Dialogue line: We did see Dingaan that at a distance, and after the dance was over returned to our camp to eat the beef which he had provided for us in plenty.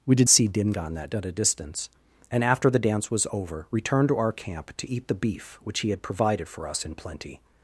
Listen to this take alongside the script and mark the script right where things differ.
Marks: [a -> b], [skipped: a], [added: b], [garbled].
We did see Dingaan that at a distance, and after the dance was over returned to our camp to eat the beef which he had provided for us in plenty.